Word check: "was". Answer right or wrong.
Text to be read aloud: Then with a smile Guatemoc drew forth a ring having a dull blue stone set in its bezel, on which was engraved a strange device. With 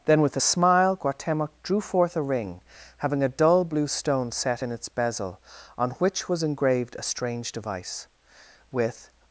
right